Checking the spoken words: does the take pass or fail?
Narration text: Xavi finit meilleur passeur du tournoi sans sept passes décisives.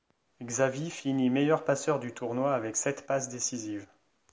fail